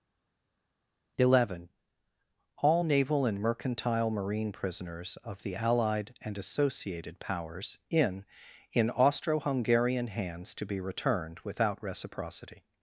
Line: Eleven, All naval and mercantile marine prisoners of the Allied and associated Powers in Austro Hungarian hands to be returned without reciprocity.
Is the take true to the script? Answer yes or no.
no